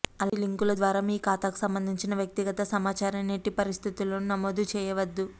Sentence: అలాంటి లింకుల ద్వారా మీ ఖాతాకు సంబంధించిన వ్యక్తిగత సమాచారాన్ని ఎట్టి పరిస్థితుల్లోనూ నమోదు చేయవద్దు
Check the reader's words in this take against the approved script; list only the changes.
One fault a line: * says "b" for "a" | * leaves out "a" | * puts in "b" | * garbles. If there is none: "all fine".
all fine